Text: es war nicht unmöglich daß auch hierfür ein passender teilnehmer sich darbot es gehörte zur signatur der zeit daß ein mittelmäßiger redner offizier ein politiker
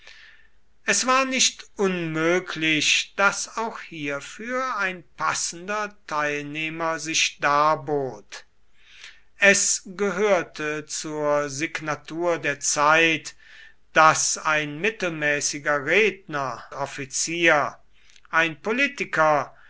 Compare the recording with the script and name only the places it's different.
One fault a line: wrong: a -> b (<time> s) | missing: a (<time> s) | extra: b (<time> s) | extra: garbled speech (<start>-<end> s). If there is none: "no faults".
no faults